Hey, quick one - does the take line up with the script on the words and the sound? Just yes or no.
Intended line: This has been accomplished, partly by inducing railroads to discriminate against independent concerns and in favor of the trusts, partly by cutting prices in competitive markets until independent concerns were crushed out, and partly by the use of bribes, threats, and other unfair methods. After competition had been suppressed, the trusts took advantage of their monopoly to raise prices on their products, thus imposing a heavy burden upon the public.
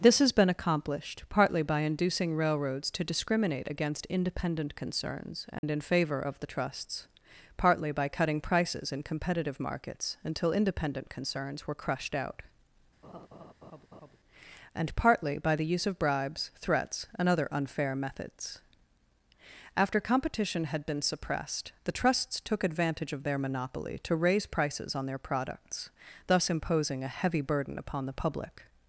no